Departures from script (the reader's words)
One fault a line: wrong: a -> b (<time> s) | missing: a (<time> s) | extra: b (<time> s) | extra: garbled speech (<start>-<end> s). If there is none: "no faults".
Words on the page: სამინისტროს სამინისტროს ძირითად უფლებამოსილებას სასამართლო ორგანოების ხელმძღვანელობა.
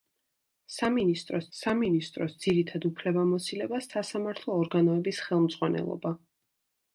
no faults